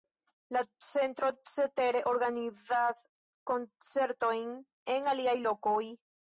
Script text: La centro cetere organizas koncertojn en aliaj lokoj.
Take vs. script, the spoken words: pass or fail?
pass